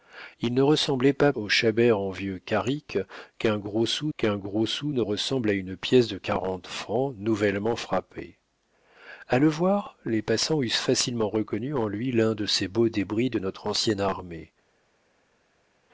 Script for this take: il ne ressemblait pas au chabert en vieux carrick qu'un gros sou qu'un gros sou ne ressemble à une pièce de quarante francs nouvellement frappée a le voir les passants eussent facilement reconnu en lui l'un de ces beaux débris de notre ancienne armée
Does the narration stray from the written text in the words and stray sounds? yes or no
no